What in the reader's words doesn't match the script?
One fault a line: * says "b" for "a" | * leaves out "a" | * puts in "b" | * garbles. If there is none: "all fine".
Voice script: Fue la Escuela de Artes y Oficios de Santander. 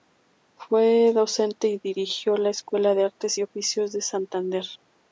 * puts in "docente y dirigió"